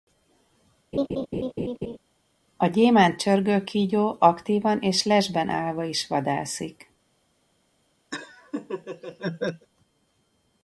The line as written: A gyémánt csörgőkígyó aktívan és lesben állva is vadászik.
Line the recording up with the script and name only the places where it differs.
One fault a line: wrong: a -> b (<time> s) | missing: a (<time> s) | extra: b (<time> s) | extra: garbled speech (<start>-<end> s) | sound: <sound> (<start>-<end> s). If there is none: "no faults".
sound: laugh (0.9-2.0 s)
sound: laugh (8.1-9.7 s)